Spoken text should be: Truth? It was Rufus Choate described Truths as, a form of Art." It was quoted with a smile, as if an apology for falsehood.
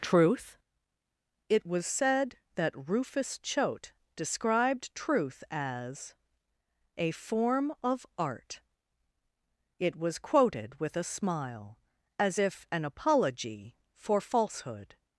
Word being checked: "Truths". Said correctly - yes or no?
no